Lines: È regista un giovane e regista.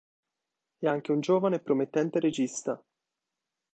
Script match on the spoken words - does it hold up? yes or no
no